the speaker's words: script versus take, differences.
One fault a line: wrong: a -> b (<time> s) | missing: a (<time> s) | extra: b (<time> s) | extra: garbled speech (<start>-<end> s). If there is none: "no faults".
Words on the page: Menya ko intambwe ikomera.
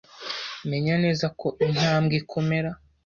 extra: neza (1.0 s)